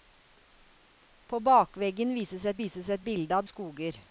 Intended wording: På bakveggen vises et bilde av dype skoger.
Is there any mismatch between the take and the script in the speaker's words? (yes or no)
yes